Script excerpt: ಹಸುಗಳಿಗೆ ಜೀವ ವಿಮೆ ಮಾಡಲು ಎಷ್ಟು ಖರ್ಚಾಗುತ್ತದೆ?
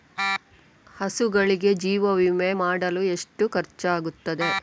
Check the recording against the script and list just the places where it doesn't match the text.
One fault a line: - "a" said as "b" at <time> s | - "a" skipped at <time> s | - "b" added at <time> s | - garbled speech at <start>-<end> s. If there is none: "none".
none